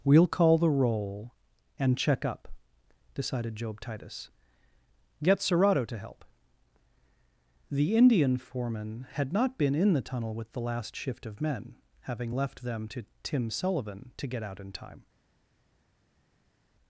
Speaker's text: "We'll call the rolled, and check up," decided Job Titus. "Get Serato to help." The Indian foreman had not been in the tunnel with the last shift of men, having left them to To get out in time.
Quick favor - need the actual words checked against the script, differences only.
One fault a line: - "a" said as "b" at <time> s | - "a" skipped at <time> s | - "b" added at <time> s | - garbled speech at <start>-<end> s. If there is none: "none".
- "rolled" said as "roll" at 0.7 s
- "Tim Sullivan" added at 13.2 s